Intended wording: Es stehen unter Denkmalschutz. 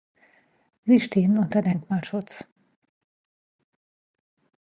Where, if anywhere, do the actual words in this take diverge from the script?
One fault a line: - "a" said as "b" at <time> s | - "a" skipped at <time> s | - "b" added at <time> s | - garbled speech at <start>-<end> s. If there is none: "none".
- "Es" said as "Sie" at 0.8 s